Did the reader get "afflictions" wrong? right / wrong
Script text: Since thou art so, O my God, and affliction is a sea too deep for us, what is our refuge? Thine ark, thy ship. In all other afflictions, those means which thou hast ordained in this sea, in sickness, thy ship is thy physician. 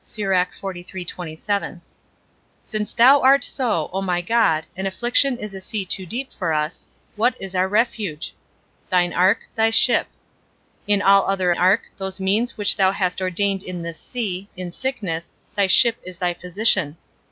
wrong